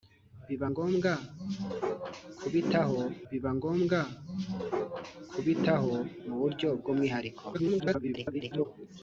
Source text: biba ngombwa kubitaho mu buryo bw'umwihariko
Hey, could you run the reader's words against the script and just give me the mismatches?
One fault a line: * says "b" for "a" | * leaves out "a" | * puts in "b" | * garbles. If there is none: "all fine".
* puts in "biba ngombwa kubitaho"
* garbles